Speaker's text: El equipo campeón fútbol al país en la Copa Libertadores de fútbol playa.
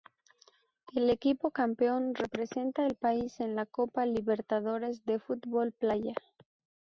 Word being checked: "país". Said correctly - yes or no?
yes